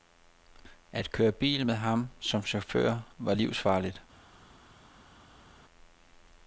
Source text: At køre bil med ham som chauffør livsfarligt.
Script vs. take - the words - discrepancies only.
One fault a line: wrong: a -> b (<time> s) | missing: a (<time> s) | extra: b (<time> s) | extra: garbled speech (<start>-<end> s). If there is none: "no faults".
extra: var (3.2 s)